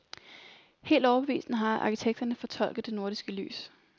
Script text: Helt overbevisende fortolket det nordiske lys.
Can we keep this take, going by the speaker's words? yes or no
no